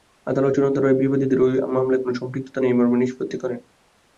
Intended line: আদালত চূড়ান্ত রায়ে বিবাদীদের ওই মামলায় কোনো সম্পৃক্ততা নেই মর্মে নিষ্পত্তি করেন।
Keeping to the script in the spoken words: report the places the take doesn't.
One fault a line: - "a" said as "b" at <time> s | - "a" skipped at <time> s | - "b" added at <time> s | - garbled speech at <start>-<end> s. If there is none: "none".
none